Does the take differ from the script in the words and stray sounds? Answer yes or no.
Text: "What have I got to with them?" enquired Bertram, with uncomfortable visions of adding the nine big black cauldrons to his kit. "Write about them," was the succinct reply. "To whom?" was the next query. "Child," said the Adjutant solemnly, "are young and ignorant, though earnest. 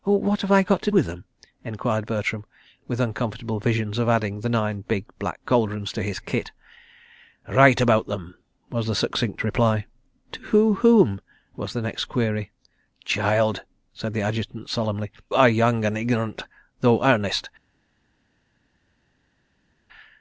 no